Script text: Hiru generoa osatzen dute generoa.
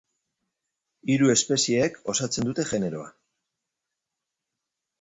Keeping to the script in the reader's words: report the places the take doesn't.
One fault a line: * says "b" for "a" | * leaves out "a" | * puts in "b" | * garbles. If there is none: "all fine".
* says "espezieek" for "generoa"